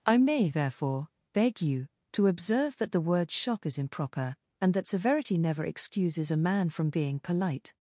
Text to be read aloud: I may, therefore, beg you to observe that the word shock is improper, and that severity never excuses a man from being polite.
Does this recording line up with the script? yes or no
yes